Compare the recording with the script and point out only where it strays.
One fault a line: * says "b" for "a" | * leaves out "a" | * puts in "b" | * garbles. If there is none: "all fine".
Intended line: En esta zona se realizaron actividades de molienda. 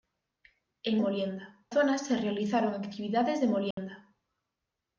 * says "molienda" for "esta"